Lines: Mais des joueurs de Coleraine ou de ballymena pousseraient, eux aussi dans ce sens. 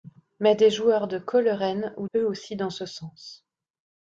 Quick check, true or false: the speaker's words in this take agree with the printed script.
false